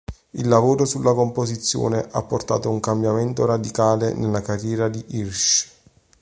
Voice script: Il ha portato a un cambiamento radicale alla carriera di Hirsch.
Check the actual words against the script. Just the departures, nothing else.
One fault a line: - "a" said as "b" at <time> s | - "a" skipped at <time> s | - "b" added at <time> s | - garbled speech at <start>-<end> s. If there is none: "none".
- "lavoro sulla composizione" added at 0.5 s
- "alla" said as "nella" at 4.2 s